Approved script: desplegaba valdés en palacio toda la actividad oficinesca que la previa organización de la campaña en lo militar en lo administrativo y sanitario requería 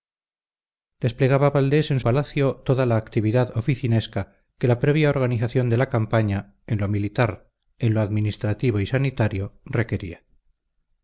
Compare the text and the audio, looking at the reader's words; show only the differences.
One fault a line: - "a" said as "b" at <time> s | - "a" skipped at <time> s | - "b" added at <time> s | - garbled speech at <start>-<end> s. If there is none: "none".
none